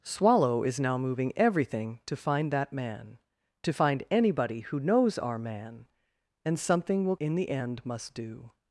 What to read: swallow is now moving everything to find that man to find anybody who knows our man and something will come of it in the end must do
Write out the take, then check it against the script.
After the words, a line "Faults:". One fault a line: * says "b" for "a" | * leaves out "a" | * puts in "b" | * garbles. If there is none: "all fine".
swallow is now moving everything to find that man to find anybody who knows our man and something will in the end must do
Faults:
* leaves out "come of it"